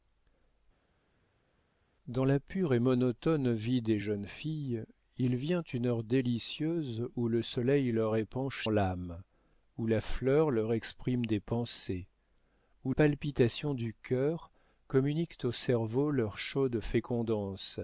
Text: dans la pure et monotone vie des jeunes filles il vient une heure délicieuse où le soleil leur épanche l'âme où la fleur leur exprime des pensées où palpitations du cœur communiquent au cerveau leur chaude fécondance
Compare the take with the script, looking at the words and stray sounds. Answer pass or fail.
pass